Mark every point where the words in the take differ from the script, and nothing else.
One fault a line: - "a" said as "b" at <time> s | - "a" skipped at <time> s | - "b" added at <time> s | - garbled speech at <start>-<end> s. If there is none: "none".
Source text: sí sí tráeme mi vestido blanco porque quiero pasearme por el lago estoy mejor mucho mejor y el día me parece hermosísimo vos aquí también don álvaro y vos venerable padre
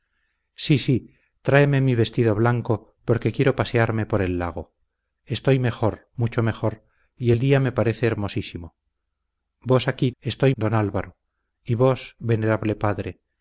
- "también" said as "estoy" at 10.2 s